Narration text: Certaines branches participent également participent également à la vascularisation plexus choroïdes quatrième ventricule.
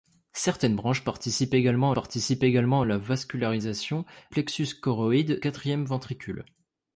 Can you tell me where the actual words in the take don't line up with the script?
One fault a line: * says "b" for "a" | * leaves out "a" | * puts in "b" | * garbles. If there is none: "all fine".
all fine